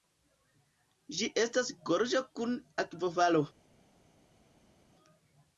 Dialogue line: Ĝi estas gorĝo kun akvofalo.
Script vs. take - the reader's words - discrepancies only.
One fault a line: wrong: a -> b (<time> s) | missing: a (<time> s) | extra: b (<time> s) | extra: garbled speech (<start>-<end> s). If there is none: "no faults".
no faults